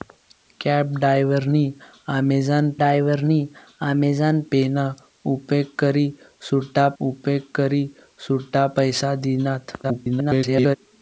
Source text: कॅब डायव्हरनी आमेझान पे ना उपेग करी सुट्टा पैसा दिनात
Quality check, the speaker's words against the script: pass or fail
fail